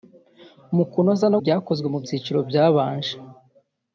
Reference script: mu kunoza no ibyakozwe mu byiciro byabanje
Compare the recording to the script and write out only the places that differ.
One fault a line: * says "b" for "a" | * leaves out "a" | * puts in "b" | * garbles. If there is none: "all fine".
all fine